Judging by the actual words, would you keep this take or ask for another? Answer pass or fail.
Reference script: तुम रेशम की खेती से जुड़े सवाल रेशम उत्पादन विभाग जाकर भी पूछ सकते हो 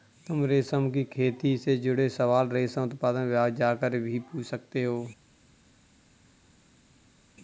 pass